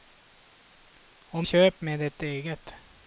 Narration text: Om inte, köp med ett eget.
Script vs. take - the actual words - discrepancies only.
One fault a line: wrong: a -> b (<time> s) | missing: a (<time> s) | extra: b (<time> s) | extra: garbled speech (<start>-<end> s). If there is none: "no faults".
missing: inte (1.5 s)